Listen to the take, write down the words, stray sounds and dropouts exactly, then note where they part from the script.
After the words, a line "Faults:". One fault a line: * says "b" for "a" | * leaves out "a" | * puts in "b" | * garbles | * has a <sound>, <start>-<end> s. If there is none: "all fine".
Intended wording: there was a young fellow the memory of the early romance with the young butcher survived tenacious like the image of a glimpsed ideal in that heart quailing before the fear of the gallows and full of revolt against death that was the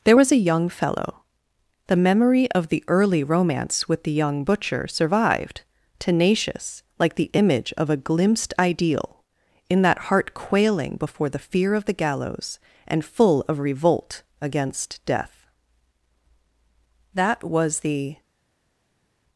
there was a young fellow the memory of the early romance with the young butcher survived tenacious like the image of a glimpsed ideal in that heart quailing before the fear of the gallows and full of revolt against death that was the
Faults:
all fine